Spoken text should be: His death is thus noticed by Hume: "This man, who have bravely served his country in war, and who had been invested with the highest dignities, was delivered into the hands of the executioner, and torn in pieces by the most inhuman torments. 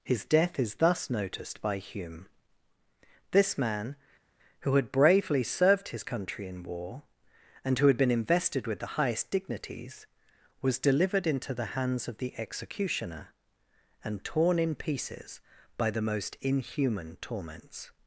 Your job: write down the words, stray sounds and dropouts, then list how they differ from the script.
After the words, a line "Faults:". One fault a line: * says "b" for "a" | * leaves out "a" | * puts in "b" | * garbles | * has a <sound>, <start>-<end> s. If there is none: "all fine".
His death is thus noticed by Hume: "This man, who had bravely served his country in war, and who had been invested with the highest dignities, was delivered into the hands of the executioner, and torn in pieces by the most inhuman torments.
Faults:
* says "had" for "have"